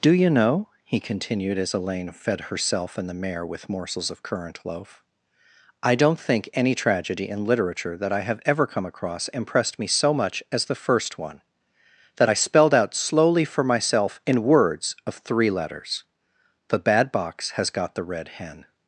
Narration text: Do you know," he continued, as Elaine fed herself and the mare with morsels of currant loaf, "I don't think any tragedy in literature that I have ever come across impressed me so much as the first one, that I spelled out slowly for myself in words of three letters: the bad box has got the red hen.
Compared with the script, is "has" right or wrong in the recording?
right